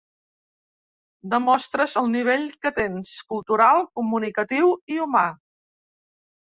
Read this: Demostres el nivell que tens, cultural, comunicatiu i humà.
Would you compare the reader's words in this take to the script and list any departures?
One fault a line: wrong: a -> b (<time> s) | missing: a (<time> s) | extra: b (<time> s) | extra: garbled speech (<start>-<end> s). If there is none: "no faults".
no faults